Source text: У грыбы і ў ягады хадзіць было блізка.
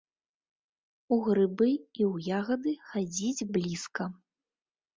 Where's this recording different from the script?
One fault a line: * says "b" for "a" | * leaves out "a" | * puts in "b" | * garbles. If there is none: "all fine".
* leaves out "было"